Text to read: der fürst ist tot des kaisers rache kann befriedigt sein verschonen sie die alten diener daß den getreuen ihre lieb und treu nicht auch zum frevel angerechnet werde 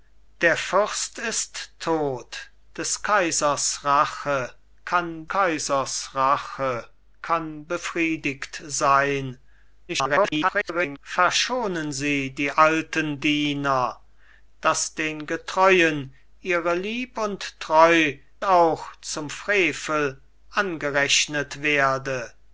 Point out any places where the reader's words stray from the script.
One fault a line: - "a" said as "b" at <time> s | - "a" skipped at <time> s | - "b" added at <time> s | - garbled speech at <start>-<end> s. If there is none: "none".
- "kaisers rache kann" added at 5.3 s
- garbled speech at 9.9-11.0 s
- "nicht" skipped at 18.2 s